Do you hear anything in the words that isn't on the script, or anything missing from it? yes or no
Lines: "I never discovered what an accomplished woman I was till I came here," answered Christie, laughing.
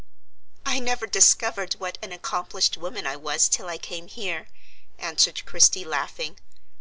no